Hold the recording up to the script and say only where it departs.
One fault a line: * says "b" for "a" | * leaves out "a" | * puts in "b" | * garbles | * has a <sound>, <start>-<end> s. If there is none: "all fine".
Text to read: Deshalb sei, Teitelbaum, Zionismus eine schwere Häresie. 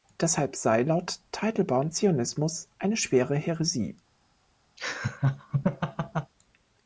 * puts in "laut"
* has a laugh, 4.8-6.3 s